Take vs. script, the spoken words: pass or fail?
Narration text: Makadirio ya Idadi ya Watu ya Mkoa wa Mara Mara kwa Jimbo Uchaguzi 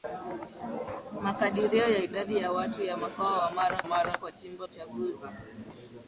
pass